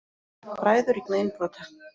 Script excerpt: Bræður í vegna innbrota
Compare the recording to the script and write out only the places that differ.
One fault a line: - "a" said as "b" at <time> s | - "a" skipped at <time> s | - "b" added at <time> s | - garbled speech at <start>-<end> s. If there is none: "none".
none